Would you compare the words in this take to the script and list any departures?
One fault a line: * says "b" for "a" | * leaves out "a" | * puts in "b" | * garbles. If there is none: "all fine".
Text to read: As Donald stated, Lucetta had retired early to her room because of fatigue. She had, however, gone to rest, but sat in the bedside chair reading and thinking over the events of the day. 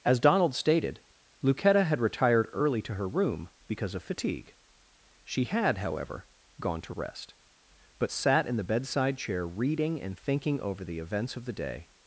all fine